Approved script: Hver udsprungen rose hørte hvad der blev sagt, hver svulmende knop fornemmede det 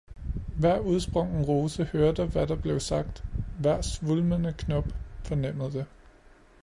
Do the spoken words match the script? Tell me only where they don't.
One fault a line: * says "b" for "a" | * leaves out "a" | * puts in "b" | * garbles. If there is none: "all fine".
all fine